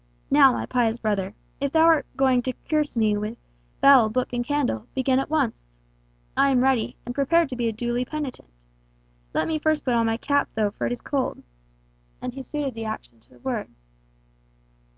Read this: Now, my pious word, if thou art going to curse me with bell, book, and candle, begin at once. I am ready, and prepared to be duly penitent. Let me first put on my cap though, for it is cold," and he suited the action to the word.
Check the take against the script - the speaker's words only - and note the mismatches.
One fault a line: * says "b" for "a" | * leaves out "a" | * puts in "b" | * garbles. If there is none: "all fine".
* says "brother" for "word"